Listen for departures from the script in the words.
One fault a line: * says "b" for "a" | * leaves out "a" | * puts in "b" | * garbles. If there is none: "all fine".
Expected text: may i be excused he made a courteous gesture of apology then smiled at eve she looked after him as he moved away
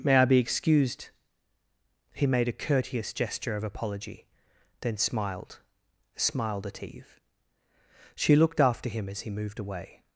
* puts in "smiled"